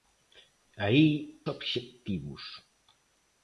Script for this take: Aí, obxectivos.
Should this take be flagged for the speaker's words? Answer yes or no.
no